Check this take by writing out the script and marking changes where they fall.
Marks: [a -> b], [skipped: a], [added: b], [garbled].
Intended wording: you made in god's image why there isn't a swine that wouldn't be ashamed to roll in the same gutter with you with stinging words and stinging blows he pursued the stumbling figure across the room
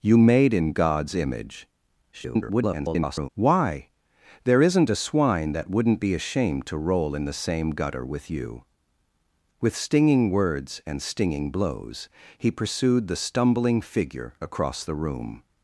you made in god's image [garbled] why there isn't a swine that wouldn't be ashamed to roll in the same gutter with you with stinging words and stinging blows he pursued the stumbling figure across the room